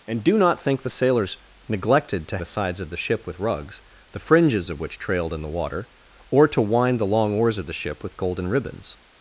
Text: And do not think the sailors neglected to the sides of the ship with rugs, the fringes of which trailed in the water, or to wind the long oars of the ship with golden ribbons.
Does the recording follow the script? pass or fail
pass